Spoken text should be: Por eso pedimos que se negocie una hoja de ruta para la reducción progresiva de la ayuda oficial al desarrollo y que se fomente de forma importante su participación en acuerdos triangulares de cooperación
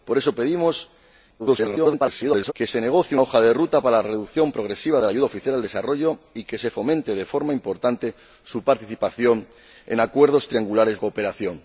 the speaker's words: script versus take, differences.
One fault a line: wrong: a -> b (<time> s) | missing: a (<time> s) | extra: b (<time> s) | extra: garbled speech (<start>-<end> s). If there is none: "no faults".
extra: garbled speech (1.4-2.5 s)
missing: una (3.2 s)
missing: de (11.0 s)